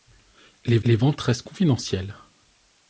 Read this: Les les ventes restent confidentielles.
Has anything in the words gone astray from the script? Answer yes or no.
no